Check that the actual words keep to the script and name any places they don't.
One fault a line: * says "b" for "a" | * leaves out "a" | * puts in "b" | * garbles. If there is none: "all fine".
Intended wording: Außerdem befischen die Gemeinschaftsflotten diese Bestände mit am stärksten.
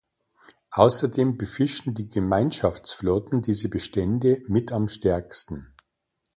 all fine